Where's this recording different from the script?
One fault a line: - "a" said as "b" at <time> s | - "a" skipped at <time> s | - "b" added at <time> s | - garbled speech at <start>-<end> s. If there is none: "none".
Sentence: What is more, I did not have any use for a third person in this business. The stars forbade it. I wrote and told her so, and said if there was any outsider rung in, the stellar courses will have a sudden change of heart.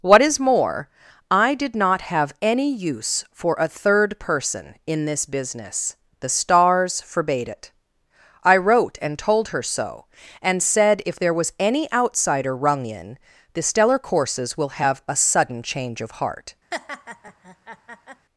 none